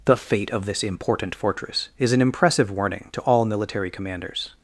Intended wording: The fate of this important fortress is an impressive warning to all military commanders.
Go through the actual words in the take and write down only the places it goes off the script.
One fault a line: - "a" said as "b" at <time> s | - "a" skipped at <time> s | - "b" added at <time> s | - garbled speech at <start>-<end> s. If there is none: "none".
none